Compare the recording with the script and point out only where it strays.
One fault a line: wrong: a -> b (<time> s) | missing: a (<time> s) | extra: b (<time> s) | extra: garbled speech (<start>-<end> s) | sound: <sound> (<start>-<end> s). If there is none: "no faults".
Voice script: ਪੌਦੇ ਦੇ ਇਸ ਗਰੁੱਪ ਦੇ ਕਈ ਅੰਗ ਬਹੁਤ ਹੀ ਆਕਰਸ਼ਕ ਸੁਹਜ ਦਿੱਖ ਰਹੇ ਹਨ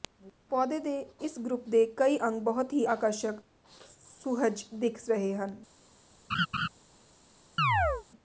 sound: laugh (6.3-6.7 s)
sound: chirp (7.6-8.0 s)